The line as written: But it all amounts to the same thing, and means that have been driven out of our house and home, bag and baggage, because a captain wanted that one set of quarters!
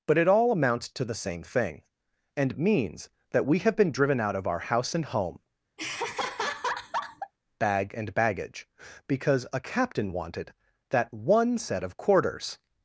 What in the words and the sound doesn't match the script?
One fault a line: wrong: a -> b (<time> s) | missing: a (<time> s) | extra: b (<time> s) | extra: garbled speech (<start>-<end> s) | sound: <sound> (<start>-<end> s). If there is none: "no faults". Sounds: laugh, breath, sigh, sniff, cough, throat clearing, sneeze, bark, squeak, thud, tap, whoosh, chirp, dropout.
extra: we (3.4 s)
sound: laugh (5.8-7.3 s)